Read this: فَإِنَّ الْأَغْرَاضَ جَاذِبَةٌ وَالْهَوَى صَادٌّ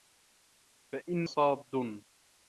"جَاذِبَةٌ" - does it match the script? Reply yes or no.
no